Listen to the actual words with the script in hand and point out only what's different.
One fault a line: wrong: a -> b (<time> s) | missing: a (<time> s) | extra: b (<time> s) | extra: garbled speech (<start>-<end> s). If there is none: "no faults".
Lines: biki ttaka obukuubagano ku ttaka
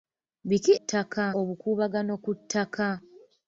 no faults